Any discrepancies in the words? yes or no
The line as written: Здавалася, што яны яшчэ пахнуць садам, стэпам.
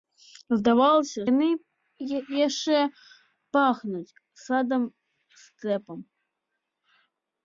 yes